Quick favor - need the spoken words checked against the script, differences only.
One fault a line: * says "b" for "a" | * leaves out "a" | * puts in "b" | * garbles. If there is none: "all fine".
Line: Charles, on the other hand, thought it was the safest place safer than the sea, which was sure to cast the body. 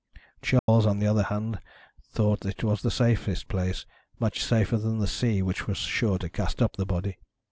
* puts in "much"
* puts in "up"